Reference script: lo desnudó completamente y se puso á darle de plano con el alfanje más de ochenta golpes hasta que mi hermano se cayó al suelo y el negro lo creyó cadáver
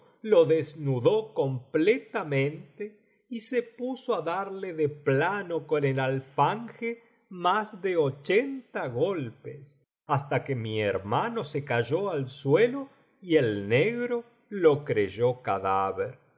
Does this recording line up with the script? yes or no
yes